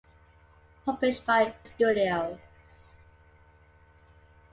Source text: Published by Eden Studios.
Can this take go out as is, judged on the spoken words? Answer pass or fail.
fail